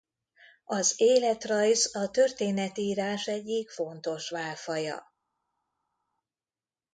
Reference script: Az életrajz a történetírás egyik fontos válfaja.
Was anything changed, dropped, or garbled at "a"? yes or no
no